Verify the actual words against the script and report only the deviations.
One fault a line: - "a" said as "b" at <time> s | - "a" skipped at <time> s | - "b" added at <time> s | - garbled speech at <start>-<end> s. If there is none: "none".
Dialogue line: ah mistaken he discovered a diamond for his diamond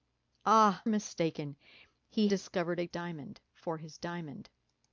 none